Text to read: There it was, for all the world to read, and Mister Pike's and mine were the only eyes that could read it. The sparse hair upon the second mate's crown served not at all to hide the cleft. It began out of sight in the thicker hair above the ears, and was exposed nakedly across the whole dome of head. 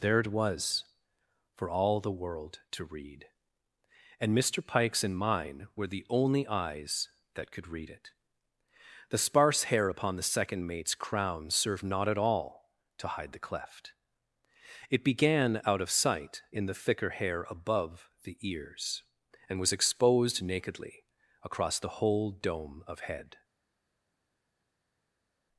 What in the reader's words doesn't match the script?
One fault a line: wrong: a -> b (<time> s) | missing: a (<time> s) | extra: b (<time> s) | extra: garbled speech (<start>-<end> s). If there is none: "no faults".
no faults